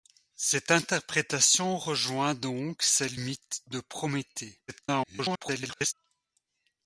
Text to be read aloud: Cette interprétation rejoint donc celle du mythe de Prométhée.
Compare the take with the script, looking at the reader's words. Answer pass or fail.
fail